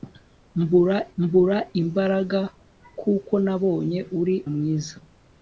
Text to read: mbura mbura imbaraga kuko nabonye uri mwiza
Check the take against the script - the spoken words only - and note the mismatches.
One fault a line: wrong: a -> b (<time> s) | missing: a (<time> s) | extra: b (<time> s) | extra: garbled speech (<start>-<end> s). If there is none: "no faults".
no faults